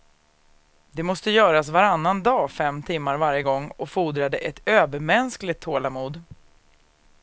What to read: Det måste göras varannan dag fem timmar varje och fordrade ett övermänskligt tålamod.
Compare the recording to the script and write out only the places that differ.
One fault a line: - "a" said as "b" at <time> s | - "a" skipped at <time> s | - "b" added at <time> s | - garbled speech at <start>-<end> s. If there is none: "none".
- "gång" added at 3.4 s